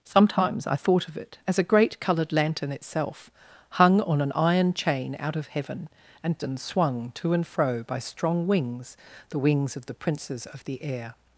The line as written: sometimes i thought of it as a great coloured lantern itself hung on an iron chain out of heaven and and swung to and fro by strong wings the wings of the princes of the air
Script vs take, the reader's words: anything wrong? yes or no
no